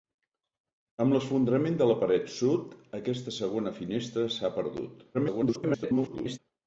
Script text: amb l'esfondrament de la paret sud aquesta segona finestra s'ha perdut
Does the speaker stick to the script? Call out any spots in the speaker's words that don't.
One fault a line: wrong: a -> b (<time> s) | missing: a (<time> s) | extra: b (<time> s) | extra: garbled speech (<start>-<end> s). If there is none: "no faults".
extra: garbled speech (5.1-6.4 s)